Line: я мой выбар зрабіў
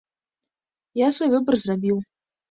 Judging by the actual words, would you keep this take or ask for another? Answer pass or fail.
fail